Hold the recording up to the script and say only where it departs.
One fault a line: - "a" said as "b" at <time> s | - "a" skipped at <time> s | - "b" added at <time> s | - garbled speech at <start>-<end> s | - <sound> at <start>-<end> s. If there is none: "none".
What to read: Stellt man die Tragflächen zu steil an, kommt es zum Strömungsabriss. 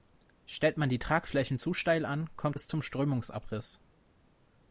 none